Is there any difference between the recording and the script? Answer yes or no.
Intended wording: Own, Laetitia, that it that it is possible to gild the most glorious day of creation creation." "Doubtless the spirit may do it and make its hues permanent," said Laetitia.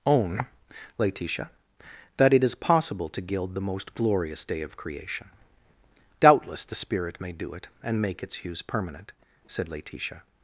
yes